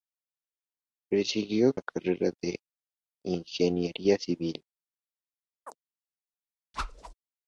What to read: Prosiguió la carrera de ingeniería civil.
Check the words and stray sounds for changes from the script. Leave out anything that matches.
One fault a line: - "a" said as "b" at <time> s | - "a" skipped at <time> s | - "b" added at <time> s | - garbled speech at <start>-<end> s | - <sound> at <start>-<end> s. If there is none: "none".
- chirp at 5.7-5.8 s
- whoosh at 6.7-7.1 s